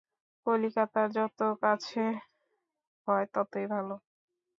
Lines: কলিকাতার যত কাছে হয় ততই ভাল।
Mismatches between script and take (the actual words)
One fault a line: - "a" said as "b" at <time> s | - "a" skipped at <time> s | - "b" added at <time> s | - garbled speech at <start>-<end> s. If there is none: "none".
none